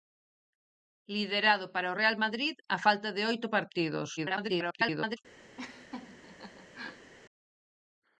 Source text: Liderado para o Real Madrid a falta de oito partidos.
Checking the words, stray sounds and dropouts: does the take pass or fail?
fail